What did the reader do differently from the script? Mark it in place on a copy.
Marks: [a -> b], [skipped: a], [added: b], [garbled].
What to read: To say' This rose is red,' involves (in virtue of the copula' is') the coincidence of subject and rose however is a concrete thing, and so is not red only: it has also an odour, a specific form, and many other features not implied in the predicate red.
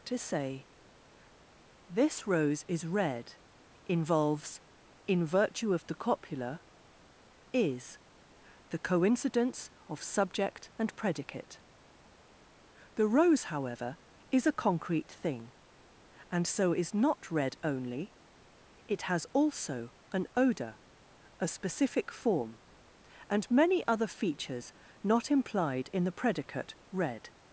To say' This rose is red,' involves (in virtue of the copula' is') the coincidence of subject and [added: predicate The] rose however is a concrete thing, and so is not red only: it has also an odour, a specific form, and many other features not implied in the predicate red.